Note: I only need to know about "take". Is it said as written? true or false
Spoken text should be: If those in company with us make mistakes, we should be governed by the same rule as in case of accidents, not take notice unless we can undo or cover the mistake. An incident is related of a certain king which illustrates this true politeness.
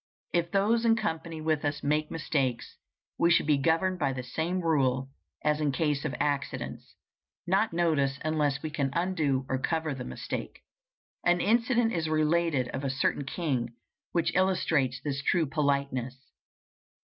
false